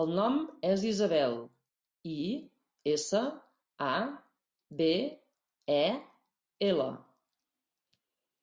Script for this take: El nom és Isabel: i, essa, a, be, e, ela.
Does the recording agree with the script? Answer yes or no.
yes